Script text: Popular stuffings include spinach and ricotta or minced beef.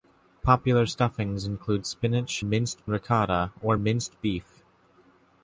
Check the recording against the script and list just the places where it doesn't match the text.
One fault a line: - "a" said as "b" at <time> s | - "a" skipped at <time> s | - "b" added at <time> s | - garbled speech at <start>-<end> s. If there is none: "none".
- "and" said as "minced" at 2.4 s